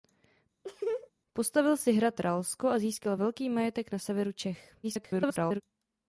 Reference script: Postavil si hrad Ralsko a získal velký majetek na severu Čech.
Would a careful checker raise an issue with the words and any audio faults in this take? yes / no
yes